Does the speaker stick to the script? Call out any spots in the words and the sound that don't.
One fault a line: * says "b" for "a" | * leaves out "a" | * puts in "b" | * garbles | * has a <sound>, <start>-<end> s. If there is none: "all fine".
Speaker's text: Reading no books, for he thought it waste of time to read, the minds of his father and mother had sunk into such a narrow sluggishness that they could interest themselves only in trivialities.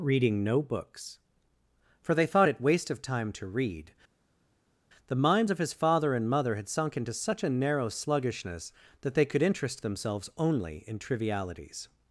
* says "they" for "he"